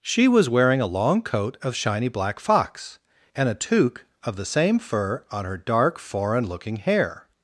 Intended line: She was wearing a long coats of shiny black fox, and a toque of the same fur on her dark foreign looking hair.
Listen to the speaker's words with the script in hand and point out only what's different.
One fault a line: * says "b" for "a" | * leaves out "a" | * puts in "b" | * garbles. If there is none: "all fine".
* says "coat" for "coats"